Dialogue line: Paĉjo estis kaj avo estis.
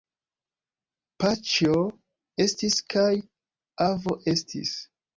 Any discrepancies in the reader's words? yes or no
no